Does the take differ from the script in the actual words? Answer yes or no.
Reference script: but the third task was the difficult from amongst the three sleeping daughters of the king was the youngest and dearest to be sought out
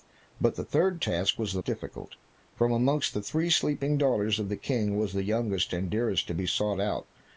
no